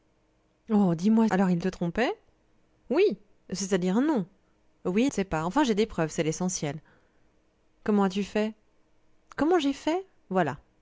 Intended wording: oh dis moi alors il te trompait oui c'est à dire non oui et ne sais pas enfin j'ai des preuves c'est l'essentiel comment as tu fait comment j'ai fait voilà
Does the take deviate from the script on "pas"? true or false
false